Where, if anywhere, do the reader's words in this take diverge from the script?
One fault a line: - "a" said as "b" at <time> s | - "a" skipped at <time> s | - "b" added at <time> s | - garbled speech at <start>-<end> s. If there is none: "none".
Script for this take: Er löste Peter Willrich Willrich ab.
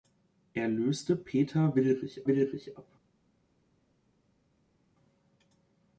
none